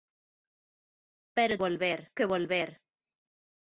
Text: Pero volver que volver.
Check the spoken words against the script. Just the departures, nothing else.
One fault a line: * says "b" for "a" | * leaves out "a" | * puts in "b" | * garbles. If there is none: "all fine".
all fine